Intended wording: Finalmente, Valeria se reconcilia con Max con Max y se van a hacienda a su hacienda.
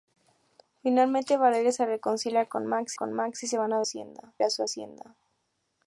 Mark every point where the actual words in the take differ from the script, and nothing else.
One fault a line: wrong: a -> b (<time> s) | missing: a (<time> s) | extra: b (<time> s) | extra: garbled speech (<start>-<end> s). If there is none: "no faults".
no faults